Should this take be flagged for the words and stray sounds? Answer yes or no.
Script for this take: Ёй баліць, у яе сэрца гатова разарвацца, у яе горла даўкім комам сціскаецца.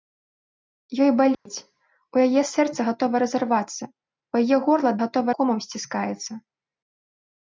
yes